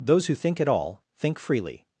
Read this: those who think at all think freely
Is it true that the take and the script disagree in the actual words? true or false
false